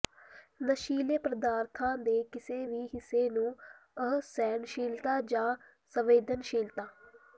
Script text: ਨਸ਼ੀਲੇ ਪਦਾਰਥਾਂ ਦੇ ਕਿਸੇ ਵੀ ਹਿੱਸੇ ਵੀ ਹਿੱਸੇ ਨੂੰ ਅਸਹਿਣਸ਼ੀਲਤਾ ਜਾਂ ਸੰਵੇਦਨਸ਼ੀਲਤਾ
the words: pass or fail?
fail